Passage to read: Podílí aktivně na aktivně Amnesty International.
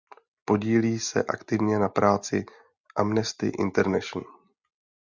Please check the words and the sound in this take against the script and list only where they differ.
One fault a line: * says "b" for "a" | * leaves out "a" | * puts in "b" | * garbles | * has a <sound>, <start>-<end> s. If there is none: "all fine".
* puts in "se"
* says "práci" for "aktivně"